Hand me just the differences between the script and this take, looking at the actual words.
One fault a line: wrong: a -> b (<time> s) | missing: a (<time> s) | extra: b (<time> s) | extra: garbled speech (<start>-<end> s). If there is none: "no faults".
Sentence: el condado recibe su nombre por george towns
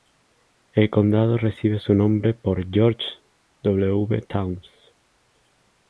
extra: w (3.6 s)